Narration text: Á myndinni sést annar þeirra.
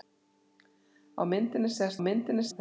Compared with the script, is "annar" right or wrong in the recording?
wrong